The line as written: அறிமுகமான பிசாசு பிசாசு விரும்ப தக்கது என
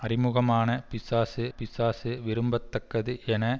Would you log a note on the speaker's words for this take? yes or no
no